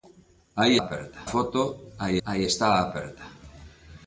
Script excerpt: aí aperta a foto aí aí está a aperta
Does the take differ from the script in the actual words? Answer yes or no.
no